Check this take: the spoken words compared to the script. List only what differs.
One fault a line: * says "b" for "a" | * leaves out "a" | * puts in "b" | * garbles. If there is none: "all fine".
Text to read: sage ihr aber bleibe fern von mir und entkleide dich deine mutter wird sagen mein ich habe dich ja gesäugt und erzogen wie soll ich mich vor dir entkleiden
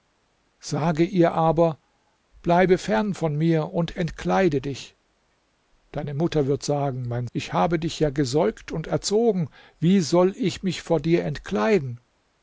all fine